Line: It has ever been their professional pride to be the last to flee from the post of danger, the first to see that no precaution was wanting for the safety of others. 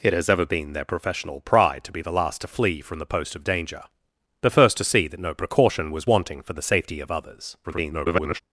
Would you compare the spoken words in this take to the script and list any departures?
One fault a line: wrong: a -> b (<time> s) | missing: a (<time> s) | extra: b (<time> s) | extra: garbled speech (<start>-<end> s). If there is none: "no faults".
extra: garbled speech (7.6-8.4 s)